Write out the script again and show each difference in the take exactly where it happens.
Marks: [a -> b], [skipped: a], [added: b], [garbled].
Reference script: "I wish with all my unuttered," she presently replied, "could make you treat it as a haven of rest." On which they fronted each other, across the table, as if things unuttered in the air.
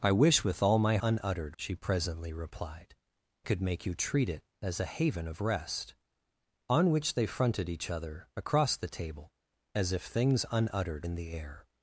"I wish with all my unuttered," she presently replied, "could make you treat it as a haven of rest." On which they fronted each other, across the table, as if things unuttered in the air.